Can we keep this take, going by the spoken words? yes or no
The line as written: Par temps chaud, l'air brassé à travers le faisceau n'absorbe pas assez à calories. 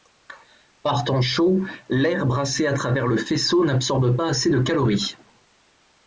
no